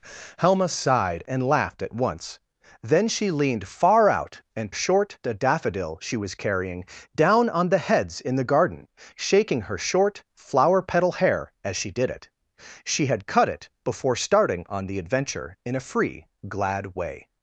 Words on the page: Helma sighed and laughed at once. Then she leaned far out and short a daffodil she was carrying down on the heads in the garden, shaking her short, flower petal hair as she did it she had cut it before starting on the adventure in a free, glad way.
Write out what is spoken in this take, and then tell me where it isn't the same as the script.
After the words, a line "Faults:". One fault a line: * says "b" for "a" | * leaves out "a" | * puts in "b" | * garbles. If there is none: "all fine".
Helma sighed and laughed at once. Then she leaned far out and short a daffodil she was carrying down on the heads in the garden, shaking her short, flower petal hair as she did it she had cut it before starting on the adventure in a free, glad way.
Faults:
all fine